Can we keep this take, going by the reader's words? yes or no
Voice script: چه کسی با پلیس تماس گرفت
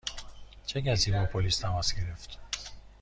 yes